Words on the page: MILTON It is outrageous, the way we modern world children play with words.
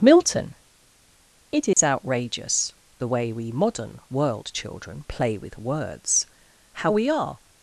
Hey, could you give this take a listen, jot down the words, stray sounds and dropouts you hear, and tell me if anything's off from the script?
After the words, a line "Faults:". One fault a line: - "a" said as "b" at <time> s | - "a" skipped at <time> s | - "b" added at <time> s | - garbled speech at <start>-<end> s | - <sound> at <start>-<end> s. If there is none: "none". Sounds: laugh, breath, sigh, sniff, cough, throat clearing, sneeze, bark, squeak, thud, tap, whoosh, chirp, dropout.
MILTON It is outrageous, the way we modern world children play with words. How we are
Faults:
- dropout at 1.7-1.8 s
- "How we are" added at 6.7 s